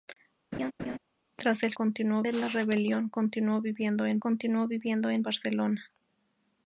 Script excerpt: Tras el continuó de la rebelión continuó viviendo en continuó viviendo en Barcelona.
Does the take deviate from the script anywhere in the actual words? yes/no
no